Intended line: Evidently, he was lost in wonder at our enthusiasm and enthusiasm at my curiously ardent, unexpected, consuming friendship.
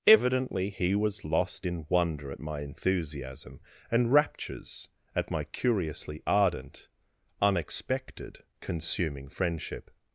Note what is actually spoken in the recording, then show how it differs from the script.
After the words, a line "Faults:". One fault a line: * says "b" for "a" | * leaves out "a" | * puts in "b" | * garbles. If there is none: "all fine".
Evidently, he was lost in wonder at my enthusiasm and raptures at my curiously ardent, unexpected, consuming friendship.
Faults:
* says "my" for "our"
* says "raptures" for "enthusiasm"